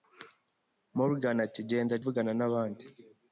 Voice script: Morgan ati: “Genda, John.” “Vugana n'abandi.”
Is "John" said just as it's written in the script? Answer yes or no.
no